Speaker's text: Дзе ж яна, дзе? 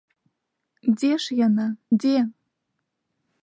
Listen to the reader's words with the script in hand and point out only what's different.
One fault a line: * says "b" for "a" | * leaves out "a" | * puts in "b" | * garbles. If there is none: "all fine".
all fine